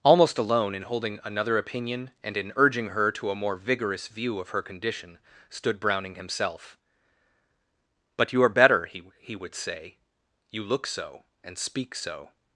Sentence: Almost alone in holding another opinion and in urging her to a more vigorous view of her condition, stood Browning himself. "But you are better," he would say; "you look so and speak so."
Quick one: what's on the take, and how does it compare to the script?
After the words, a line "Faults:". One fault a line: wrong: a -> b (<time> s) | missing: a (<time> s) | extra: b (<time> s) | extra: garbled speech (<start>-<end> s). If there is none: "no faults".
Almost alone in holding another opinion and in urging her to a more vigorous view of her condition, stood Browning himself. "But you are better," he he would say; "you look so and speak so."
Faults:
extra: he (9.2 s)